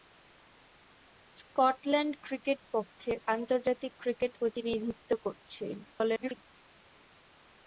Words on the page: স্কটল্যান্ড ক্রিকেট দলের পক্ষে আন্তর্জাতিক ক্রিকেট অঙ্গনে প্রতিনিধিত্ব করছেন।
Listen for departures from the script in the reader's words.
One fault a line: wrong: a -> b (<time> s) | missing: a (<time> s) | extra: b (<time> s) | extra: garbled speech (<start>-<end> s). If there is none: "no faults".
missing: দলের (2.6 s)
missing: অঙ্গনে (4.3 s)
extra: garbled speech (5.8-6.4 s)